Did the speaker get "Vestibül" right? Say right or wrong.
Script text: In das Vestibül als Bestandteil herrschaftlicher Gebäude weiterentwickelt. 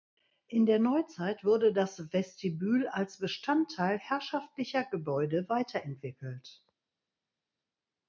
right